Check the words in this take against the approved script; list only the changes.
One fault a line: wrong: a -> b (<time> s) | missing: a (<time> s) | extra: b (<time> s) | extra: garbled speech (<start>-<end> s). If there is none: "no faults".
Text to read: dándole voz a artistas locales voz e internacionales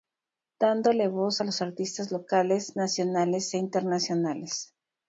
extra: los (1.4 s)
wrong: voz -> nacionales (2.7 s)